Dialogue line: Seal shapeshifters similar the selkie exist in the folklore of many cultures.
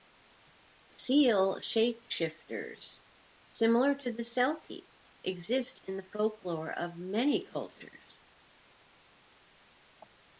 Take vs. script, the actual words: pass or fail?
fail